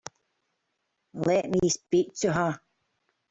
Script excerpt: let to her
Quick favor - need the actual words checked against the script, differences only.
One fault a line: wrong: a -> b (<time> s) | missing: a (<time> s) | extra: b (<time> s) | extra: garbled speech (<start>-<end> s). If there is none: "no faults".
extra: me speak (1.5 s)